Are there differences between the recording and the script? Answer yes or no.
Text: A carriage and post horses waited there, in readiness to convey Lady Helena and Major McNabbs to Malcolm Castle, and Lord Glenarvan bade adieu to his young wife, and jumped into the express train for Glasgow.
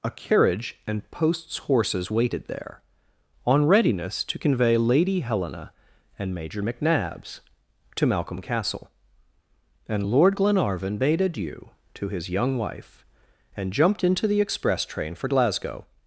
yes